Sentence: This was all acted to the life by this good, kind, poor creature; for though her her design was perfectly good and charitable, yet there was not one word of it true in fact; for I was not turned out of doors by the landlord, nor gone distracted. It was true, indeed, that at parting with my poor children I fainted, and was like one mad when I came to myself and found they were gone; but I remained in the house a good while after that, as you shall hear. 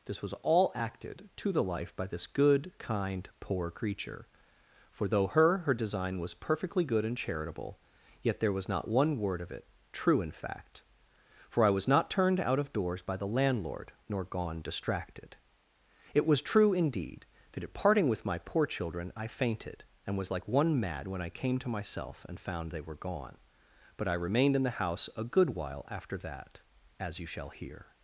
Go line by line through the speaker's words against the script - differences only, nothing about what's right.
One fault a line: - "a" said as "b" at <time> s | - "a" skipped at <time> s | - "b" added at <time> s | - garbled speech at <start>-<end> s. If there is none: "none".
none